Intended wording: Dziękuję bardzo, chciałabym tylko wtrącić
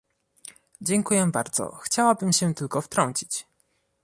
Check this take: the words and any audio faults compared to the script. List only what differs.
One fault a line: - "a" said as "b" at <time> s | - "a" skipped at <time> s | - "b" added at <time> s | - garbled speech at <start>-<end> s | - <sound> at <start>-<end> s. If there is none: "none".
- "się" added at 2.3 s